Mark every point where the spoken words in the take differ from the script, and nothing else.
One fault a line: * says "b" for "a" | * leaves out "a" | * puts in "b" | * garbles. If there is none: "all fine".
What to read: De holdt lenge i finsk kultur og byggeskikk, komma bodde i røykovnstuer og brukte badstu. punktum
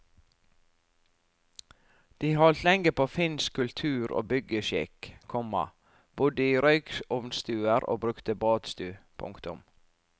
* says "på" for "i"